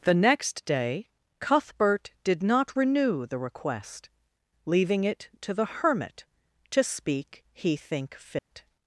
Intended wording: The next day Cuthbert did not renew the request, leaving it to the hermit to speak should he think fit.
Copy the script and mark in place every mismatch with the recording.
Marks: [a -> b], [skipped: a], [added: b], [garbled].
The next day Cuthbert did not renew the request, leaving it to the hermit to speak [skipped: should] he think fit.